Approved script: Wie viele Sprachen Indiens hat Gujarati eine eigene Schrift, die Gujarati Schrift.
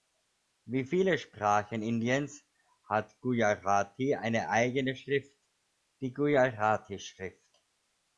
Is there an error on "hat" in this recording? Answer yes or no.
no